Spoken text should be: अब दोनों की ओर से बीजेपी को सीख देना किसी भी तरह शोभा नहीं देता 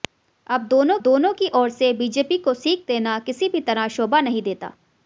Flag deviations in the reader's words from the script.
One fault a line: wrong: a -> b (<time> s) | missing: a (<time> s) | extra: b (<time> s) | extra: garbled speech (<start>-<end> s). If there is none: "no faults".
extra: दोनों (1.0 s)